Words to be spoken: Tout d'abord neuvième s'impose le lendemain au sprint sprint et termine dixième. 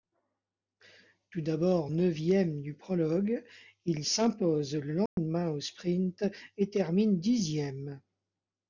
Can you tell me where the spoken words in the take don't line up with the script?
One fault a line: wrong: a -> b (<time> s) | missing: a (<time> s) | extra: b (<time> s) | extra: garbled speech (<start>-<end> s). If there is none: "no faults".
extra: du prologue il (2.6 s)
missing: sprint (6.2 s)